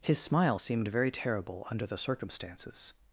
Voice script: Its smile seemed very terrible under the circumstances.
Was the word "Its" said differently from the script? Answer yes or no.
yes